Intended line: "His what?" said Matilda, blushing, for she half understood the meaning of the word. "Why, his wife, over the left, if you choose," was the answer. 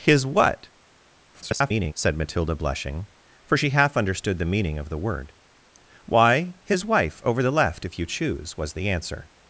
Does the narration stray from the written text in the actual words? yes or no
yes